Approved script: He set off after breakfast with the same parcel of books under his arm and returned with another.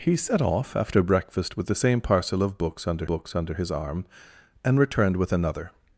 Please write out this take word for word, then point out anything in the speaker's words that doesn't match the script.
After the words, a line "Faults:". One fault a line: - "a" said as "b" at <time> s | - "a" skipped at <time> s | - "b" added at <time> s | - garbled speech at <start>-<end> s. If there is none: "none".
He set off after breakfast with the same parcel of books under books under his arm and returned with another.
Faults:
- "books under" added at 3.1 s